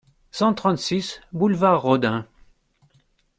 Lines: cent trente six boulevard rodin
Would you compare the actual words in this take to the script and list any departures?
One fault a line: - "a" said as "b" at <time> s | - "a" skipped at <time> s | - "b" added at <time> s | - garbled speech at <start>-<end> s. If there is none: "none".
none